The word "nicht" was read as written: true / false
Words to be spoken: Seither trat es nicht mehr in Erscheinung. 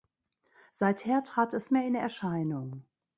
false